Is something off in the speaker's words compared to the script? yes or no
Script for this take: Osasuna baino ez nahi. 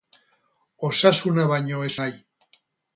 no